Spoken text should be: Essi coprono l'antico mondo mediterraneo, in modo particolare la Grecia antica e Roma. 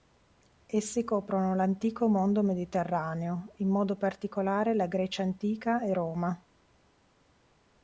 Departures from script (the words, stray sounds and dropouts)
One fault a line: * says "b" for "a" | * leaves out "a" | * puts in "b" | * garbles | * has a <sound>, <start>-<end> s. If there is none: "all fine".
all fine